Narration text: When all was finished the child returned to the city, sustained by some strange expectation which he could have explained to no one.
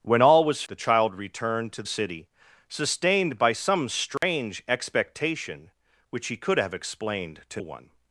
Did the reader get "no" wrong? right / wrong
wrong